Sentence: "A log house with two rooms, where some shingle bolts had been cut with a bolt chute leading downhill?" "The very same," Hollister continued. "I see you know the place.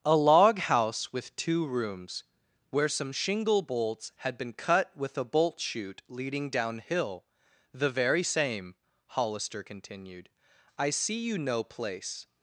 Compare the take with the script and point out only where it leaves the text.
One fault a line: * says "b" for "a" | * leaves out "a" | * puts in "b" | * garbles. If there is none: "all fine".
* leaves out "the"